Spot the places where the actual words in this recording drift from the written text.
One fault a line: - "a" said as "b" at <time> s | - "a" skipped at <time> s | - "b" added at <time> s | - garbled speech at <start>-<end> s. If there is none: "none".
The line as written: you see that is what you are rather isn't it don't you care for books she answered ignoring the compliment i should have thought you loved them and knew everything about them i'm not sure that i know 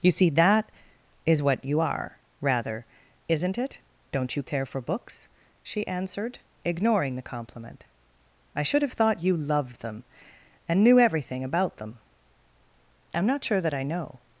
none